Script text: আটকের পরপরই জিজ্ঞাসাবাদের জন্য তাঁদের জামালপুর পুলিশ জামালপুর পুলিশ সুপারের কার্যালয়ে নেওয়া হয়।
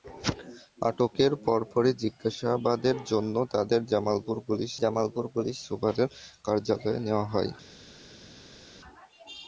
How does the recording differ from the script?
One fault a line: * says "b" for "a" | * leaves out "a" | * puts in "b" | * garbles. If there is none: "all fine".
all fine